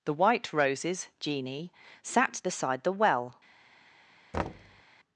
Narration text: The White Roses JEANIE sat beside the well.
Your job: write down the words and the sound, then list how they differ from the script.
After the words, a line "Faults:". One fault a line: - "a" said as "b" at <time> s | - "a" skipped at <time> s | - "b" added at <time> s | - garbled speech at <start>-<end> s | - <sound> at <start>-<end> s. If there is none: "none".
The White Roses JEANIE sat beside the well.
Faults:
- thud at 4.3-4.8 s